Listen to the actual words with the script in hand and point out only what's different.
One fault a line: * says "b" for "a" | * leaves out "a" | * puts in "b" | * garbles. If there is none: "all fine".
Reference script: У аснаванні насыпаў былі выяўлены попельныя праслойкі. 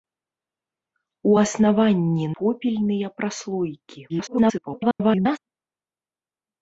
* leaves out "насыпаў былі выяўлены"
* garbles